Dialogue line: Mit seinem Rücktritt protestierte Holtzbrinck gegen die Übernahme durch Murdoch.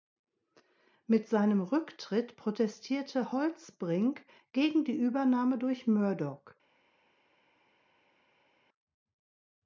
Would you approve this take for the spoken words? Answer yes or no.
yes